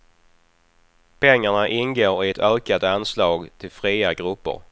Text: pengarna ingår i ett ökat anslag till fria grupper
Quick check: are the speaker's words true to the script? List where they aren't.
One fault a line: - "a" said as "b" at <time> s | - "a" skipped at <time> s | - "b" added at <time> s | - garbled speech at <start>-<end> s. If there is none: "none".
none